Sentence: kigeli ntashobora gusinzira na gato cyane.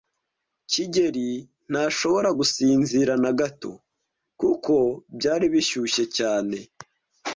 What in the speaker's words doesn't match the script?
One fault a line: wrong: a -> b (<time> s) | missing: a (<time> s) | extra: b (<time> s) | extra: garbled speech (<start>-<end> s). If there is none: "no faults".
extra: kuko byari bishyushye (4.4 s)